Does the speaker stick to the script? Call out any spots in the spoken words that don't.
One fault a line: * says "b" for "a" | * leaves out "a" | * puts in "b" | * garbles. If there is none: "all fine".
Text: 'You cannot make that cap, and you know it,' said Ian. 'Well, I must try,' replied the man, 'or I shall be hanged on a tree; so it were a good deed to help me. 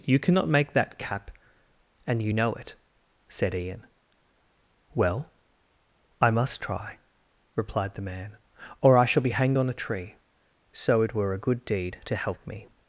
all fine